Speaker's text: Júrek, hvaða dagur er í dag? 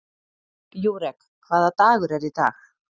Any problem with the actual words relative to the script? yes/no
no